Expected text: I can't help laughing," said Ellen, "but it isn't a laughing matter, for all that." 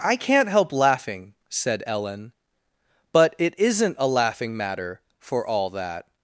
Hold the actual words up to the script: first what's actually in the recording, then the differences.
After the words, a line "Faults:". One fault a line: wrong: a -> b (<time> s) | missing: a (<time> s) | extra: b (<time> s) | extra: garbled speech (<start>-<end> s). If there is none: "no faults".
I can't help laughing," said Ellen, "but it isn't a laughing matter, for all that."
Faults:
no faults